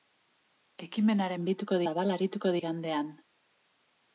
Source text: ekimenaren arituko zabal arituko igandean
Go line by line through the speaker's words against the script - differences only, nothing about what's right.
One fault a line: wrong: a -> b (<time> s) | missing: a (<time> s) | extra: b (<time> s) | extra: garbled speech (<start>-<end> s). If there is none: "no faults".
no faults